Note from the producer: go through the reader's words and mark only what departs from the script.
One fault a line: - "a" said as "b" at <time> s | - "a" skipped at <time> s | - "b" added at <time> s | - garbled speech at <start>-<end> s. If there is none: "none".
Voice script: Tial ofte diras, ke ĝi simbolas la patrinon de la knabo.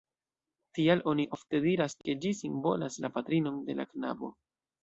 - "oni" added at 1.1 s